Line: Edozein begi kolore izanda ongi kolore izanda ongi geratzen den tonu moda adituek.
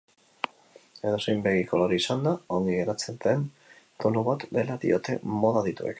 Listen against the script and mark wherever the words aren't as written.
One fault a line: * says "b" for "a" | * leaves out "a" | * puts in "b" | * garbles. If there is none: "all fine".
* says "geratzen den tonu bat dela diote" for "kolore izanda ongi geratzen den tonu"